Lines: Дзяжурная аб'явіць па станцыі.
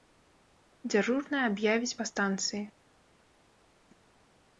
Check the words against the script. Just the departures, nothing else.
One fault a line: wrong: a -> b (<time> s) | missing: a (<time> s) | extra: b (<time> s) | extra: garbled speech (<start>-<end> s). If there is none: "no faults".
no faults